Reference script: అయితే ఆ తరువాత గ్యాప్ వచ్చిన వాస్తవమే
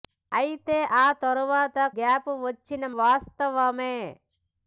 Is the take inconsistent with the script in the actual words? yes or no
no